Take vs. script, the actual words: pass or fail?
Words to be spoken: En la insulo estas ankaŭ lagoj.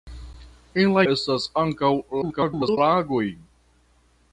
fail